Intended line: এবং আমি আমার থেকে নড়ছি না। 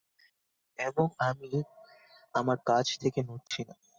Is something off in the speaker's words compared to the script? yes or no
yes